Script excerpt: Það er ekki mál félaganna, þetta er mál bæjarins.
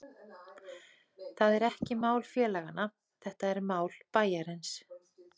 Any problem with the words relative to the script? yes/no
no